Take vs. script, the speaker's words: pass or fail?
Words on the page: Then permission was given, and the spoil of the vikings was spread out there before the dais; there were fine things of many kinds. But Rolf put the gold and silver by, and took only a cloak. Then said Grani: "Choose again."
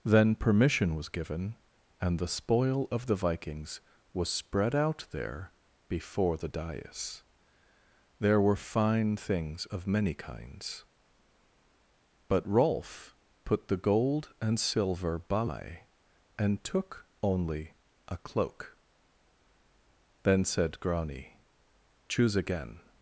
pass